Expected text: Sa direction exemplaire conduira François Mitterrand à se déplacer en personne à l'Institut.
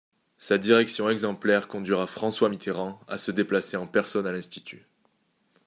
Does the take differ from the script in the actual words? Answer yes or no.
no